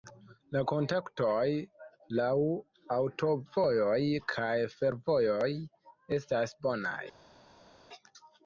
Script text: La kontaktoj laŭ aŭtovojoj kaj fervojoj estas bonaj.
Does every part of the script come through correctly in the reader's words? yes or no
yes